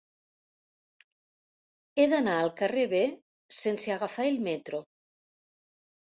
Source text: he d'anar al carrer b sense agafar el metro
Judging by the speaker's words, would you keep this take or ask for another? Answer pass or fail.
pass